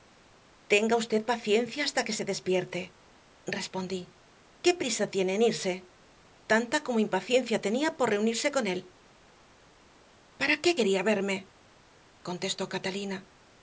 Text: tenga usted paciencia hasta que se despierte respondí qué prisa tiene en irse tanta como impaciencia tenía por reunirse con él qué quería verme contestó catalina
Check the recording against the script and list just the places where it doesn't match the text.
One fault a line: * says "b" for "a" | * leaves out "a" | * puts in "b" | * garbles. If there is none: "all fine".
* puts in "para"